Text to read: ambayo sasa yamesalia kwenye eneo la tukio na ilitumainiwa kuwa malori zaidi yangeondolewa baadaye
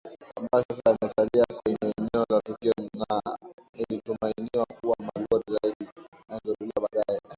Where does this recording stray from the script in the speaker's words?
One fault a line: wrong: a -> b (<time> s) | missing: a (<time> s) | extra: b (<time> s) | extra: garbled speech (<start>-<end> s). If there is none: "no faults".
no faults